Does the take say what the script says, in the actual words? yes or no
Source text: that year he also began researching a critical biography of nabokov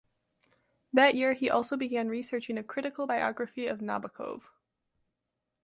yes